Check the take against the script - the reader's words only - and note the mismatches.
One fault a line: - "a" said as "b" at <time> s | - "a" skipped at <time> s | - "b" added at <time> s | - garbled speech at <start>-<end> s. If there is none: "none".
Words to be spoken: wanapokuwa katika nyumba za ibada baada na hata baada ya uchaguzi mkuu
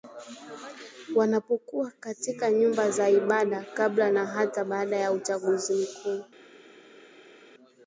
- "baada" said as "kabla" at 3.7 s